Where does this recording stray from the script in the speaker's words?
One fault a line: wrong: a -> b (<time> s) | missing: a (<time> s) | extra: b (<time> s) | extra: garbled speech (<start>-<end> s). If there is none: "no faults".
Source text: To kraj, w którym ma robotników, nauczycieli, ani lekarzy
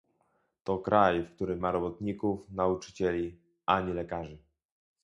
no faults